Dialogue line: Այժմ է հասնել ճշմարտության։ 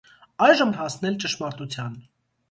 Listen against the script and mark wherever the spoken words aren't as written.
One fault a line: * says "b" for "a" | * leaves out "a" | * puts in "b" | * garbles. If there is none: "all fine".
all fine